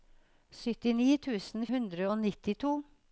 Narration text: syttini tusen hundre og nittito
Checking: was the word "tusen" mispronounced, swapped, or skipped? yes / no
no